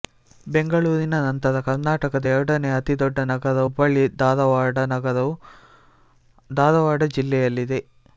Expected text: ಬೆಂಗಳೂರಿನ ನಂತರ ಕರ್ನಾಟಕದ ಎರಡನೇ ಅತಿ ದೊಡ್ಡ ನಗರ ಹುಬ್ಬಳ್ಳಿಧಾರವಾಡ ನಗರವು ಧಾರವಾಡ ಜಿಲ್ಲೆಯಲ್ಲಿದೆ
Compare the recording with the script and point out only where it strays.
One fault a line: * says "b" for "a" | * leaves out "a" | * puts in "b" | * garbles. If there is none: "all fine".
all fine